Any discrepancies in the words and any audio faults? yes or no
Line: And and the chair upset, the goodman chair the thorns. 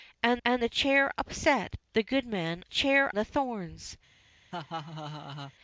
yes